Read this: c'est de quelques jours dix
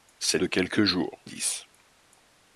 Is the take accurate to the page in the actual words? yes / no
yes